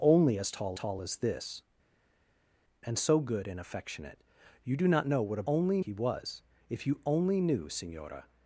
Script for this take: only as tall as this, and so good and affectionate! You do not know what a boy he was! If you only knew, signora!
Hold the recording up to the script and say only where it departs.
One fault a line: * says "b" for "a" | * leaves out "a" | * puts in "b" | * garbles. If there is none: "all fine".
* puts in "tall"
* says "only" for "boy"